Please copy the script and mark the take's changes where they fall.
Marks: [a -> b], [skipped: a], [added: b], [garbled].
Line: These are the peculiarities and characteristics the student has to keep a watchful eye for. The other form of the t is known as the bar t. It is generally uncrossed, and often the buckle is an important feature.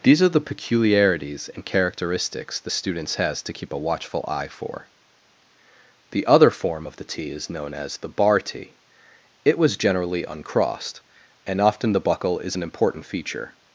These are the peculiarities and characteristics the [student -> students] has to keep a watchful eye for. The other form of the t is known as the bar t. It [is -> was] generally uncrossed, and often the buckle is an important feature.